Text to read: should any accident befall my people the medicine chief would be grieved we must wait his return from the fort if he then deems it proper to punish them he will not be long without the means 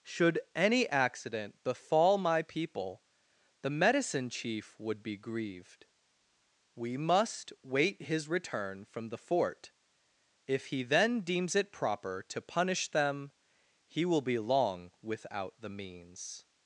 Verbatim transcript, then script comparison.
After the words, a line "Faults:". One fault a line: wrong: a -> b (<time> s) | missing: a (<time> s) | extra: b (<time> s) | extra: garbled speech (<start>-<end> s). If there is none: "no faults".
should any accident befall my people the medicine chief would be grieved we must wait his return from the fort if he then deems it proper to punish them he will be long without the means
Faults:
missing: not (14.2 s)